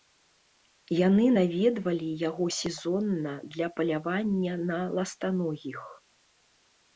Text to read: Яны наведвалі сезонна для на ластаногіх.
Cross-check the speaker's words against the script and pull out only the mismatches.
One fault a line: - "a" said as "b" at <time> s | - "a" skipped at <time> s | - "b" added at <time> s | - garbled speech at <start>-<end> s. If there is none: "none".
- "яго" added at 2.3 s
- "палявання" added at 3.8 s